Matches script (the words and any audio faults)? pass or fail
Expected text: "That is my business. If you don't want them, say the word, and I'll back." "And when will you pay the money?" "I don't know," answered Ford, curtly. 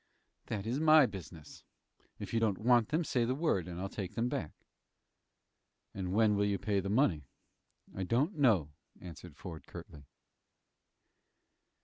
fail